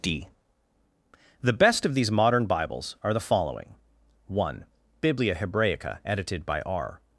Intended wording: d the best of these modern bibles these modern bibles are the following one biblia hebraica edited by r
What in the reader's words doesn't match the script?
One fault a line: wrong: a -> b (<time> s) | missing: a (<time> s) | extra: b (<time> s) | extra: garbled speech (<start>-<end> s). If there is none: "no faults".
missing: these modern bibles (3.0 s)